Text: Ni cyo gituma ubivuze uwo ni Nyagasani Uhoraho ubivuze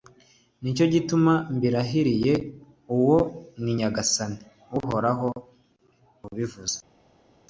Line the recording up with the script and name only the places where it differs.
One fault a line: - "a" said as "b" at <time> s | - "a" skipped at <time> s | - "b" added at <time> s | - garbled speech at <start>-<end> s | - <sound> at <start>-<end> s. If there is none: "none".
- "ubivuze" said as "mbirahiriye" at 1.6 s